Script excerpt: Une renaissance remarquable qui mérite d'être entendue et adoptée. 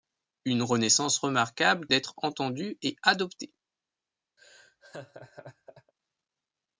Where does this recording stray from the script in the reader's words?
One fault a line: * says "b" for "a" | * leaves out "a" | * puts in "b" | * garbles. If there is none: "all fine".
* leaves out "qui mérite"